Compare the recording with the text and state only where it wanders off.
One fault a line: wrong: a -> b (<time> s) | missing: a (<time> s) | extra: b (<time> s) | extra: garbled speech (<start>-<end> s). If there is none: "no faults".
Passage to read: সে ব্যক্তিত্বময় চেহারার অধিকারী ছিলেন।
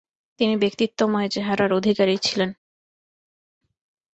wrong: সে -> তিনি (0.4 s)